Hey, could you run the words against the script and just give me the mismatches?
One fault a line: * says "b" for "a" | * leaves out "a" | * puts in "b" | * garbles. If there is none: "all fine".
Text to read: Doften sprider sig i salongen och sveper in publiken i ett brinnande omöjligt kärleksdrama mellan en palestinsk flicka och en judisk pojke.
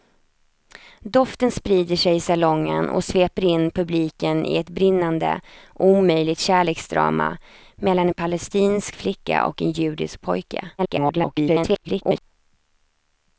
* garbles